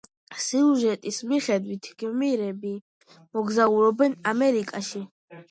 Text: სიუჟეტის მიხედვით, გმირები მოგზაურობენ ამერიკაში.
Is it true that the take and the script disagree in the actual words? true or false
false